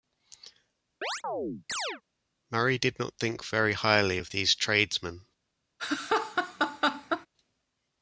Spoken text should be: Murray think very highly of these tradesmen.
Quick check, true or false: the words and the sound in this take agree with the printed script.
false